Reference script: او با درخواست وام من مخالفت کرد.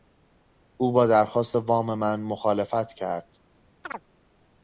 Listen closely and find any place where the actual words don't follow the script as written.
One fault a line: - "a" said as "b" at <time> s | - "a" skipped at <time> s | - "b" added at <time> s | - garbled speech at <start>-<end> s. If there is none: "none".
none